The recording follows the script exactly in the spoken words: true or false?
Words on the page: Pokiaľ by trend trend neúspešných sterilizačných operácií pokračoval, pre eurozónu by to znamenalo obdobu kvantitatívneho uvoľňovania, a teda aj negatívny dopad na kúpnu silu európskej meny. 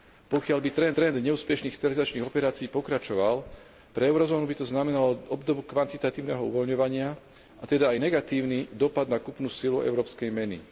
true